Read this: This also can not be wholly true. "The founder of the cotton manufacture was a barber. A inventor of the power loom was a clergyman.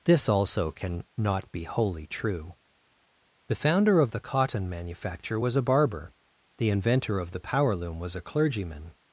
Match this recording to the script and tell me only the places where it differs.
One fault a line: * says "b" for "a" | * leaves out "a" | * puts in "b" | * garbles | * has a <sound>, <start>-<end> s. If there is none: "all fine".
* says "The" for "A"